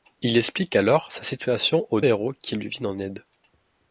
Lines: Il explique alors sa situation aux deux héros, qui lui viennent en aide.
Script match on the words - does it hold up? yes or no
no